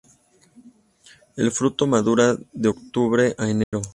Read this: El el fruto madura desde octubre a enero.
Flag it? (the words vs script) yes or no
yes